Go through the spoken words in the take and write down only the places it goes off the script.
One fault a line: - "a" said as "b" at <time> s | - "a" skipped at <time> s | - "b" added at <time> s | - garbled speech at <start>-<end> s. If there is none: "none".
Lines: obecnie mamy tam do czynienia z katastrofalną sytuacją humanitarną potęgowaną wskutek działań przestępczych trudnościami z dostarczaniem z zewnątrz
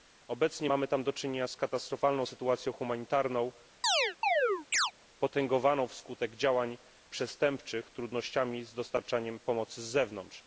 - "pomocy" added at 9.4 s